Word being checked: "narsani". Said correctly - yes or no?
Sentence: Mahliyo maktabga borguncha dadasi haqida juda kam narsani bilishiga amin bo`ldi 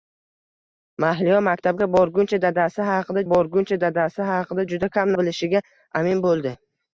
no